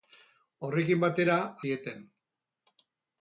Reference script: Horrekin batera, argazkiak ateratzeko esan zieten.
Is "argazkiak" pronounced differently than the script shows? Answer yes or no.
yes